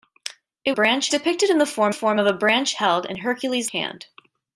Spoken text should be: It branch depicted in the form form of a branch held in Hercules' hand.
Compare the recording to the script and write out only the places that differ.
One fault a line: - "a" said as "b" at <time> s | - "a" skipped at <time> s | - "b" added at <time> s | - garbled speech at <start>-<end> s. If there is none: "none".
none